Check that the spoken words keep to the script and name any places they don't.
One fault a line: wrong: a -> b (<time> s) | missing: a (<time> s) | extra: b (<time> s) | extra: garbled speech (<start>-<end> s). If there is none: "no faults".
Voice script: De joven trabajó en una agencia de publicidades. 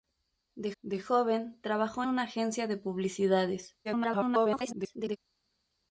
extra: de (0.8 s)
missing: en (2.0 s)
extra: garbled speech (3.8-5.2 s)